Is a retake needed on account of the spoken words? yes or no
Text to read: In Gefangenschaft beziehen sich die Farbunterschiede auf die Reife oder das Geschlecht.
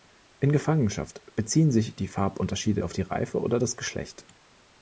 no